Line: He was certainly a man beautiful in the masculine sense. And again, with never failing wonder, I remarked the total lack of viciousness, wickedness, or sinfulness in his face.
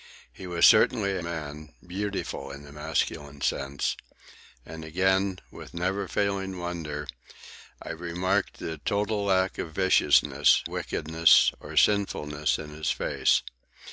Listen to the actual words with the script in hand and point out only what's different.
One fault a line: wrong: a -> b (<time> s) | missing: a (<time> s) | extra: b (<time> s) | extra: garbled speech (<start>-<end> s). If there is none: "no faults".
no faults